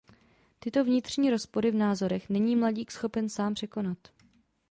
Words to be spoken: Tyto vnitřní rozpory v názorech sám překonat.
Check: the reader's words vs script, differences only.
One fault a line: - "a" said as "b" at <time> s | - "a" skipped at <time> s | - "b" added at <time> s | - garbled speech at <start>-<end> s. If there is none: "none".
- "není mladík schopen" added at 2.3 s